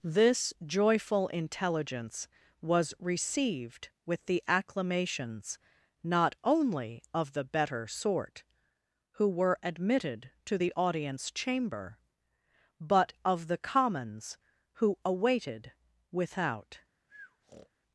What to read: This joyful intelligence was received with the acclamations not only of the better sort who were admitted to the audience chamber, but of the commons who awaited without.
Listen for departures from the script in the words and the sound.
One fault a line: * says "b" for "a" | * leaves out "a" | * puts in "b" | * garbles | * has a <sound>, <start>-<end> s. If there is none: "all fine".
* has a breath, 17.1-17.7 s